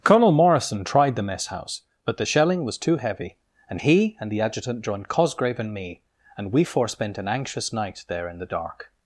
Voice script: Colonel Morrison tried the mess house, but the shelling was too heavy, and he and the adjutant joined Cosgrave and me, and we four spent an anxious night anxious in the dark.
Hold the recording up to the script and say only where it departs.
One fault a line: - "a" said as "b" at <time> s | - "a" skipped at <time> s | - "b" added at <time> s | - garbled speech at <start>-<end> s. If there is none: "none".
- "anxious" said as "there" at 8.1 s